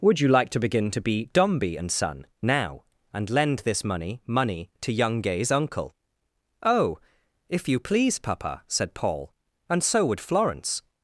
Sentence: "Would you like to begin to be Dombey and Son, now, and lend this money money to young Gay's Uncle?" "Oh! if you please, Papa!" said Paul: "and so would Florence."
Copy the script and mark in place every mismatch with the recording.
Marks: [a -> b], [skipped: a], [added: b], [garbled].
"Would you like to begin to be Dombey and Son, now, and lend this money money to young Gay's Uncle?" "Oh! if you please, Papa!" said Paul: "and so would Florence."